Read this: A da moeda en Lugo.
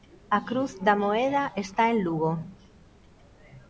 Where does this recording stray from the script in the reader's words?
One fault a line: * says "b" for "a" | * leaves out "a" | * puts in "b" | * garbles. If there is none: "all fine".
* puts in "cruz"
* puts in "está"